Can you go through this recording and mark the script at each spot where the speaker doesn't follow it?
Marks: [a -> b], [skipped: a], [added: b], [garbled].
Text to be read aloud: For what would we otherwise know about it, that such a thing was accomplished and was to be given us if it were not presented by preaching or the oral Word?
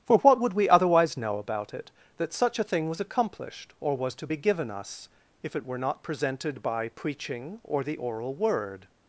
For what would we otherwise know about it, that such a thing was accomplished [and -> or] was to be given us if it were not presented by preaching or the oral Word?